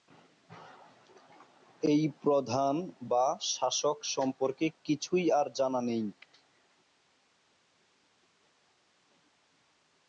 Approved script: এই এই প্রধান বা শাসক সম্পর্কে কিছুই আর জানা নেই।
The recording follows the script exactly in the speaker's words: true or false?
false